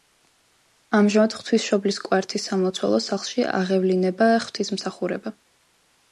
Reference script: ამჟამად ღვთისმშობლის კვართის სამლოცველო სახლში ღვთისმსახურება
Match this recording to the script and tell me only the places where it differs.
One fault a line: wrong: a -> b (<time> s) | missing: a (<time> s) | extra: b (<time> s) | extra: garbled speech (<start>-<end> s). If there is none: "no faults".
extra: აღევლინება (3.6 s)